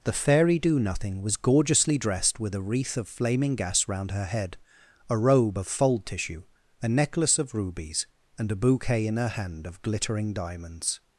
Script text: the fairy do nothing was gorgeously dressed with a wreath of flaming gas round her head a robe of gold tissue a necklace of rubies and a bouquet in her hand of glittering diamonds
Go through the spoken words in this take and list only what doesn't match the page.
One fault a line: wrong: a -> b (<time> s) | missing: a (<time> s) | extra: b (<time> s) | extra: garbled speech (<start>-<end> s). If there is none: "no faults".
wrong: gold -> fold (5.7 s)